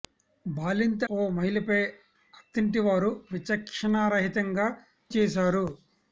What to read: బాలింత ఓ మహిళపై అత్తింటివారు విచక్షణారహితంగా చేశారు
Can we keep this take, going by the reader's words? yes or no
yes